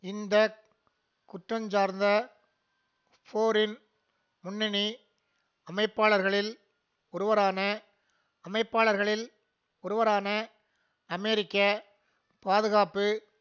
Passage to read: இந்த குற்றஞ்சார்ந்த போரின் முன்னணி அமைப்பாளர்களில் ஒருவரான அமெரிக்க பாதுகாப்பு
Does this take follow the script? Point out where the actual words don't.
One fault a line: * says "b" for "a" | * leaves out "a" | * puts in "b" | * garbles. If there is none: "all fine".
* puts in "அமைப்பாளர்களில் ஒருவரான"